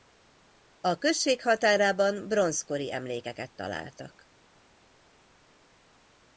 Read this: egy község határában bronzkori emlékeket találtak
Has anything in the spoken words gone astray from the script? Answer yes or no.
yes